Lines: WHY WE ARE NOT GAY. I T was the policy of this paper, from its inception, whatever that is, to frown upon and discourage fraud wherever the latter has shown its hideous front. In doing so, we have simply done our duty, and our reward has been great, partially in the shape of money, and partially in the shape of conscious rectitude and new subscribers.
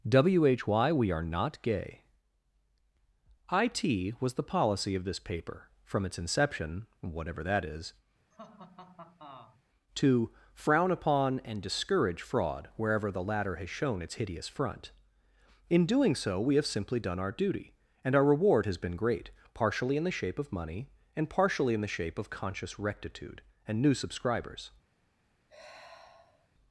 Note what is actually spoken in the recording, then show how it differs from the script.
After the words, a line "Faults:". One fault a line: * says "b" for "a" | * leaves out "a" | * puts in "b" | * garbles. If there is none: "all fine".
WHY WE ARE NOT GAY. I T was the policy of this paper, from its inception, whatever that is, to frown upon and discourage fraud wherever the latter has shown its hideous front. In doing so, we have simply done our duty, and our reward has been great, partially in the shape of money, and partially in the shape of conscious rectitude and new subscribers.
Faults:
all fine